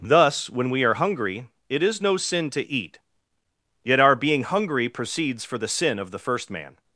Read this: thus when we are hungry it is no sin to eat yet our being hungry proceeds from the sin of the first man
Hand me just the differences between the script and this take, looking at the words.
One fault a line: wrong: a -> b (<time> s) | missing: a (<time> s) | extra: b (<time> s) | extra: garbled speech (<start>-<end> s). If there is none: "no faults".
wrong: from -> for (5.5 s)